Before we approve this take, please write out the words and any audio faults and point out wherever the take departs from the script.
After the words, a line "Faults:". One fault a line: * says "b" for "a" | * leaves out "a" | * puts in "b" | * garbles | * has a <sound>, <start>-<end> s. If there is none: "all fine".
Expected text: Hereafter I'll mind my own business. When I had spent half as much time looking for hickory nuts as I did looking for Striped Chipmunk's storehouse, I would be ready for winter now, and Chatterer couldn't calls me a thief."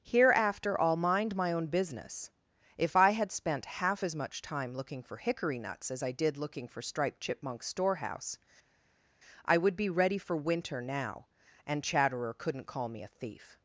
Hereafter I'll mind my own business. If I had spent half as much time looking for hickory nuts as I did looking for Striped Chipmunk's storehouse, I would be ready for winter now, and Chatterer couldn't call me a thief."
Faults:
* says "If" for "When"
* says "call" for "calls"